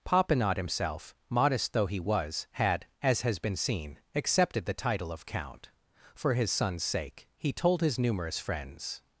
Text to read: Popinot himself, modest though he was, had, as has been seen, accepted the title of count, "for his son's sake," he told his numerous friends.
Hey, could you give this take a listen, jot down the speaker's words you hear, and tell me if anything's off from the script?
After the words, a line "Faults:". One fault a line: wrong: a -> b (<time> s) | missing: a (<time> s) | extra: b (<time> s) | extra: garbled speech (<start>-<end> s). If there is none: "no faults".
Popinot himself, modest though he was, had, as has been seen, accepted the title of count, "for his son's sake," he told his numerous friends.
Faults:
no faults